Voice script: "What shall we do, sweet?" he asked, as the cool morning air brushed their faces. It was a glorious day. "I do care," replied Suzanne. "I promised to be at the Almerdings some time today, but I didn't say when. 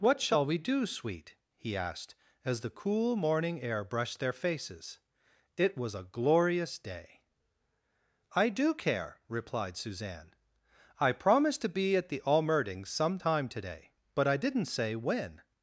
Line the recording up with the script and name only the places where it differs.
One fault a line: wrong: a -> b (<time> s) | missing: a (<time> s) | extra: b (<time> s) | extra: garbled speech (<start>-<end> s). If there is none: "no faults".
no faults